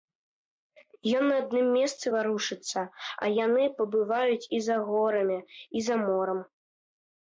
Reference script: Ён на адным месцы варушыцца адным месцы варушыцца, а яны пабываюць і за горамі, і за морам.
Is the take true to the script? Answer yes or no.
no